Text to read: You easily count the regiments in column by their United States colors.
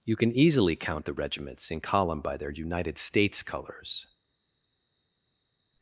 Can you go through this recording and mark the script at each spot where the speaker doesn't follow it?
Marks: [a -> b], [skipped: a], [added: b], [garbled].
You [added: can] easily count the regiments in column by their United States colors.